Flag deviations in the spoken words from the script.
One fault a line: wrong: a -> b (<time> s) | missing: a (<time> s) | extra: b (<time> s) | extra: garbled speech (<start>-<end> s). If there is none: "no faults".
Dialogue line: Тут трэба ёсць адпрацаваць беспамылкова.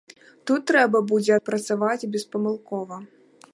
wrong: ёсць -> будзе (1.1 s)